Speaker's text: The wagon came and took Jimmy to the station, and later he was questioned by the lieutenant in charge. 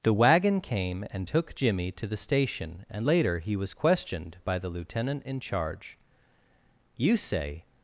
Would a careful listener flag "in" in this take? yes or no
no